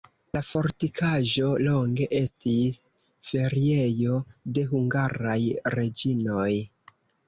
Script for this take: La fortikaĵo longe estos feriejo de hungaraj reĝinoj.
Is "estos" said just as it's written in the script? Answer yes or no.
no